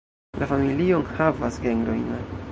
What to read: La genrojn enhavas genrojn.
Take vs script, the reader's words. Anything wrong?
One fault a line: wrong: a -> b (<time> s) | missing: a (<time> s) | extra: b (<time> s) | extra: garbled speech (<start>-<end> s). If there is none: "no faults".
wrong: genrojn -> familio (0.5 s)